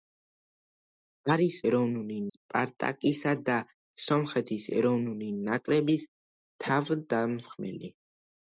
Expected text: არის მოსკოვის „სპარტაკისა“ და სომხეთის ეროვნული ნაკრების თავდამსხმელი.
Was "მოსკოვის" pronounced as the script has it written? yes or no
no